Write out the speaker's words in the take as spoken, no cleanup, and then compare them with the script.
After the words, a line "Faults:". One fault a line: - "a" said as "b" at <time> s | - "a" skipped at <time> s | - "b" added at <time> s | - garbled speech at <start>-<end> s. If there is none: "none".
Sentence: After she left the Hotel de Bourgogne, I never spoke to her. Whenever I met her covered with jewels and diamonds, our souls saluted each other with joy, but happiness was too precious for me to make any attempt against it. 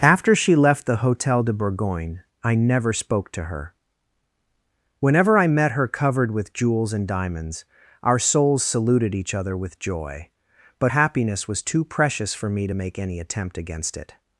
After she left the Hotel de Bourgogne, I never spoke to her. Whenever I met her covered with jewels and diamonds, our souls saluted each other with joy, but happiness was too precious for me to make any attempt against it.
Faults:
none